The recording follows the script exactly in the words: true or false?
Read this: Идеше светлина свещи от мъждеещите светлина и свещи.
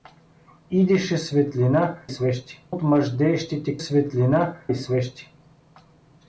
true